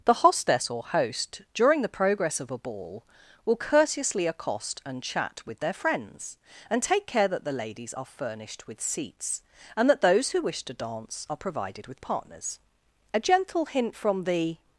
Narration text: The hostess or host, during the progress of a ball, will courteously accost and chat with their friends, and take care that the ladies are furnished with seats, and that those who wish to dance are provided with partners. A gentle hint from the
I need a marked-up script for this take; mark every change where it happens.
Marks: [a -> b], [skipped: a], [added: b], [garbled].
The hostess or host, during the progress of a ball, will courteously accost and chat with their friends, and take care that the ladies are furnished with seats, and that those who wish to dance are provided with partners. A gentle hint from the